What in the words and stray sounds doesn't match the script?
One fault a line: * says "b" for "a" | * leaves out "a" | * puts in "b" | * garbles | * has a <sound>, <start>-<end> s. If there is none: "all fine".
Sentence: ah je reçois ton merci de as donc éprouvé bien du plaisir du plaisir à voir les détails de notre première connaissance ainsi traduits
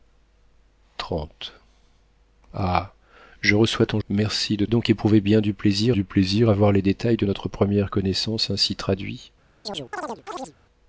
* has a chirp, 9.6-10.5 s